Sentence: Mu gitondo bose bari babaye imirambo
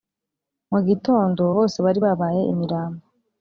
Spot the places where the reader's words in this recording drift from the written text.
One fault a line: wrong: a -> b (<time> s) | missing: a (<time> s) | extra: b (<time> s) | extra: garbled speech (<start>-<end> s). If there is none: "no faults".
no faults